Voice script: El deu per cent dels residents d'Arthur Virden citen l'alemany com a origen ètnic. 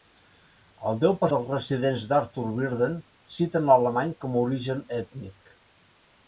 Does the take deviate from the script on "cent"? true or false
true